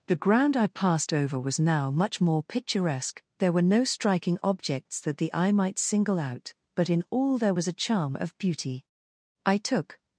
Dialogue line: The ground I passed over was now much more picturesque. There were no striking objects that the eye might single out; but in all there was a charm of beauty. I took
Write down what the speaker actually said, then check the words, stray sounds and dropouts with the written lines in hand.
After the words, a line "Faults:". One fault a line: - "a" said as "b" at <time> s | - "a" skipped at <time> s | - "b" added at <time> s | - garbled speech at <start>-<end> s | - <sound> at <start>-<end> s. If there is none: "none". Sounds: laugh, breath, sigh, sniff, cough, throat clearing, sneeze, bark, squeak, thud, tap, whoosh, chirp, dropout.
The ground I passed over was now much more picturesque. There were no striking objects that the eye might single out; but in all there was a charm of beauty. I took
Faults:
none